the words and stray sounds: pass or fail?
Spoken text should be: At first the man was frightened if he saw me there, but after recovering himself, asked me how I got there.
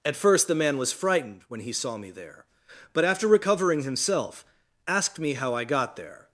fail